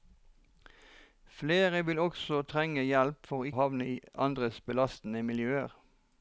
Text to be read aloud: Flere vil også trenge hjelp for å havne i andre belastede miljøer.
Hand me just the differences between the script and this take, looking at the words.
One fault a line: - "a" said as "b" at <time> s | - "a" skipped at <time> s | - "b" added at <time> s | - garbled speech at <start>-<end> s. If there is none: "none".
none